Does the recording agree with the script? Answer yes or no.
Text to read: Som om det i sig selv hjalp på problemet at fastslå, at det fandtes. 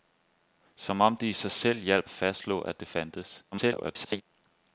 no